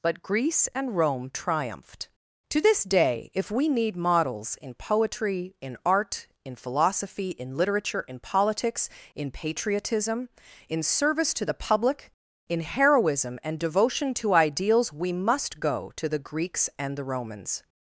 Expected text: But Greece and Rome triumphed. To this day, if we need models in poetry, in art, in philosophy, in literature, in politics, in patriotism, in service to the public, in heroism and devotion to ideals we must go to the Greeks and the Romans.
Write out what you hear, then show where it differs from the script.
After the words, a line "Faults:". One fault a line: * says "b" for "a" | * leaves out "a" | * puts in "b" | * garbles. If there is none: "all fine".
But Greece and Rome triumphed. To this day, if we need models in poetry, in art, in philosophy, in literature, in politics, in patriotism, in service to the public, in heroism and devotion to ideals we must go to the Greeks and the Romans.
Faults:
all fine